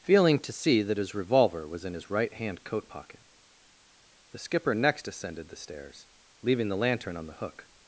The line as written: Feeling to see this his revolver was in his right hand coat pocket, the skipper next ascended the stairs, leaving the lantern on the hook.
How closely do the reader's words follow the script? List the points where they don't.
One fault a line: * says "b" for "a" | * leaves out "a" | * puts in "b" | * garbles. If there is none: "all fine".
* says "that" for "this"